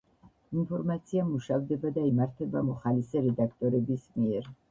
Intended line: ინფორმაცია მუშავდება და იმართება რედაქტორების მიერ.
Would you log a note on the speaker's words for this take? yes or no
yes